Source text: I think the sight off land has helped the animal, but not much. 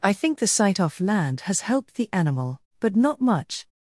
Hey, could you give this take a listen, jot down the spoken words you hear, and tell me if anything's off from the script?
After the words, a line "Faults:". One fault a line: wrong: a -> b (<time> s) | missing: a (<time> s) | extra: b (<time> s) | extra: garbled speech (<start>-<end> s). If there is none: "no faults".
I think the sight off land has helped the animal, but not much.
Faults:
no faults